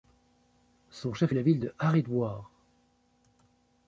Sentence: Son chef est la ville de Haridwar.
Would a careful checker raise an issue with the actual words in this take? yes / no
no